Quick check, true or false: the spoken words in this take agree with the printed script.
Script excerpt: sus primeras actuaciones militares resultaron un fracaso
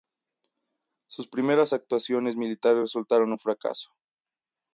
true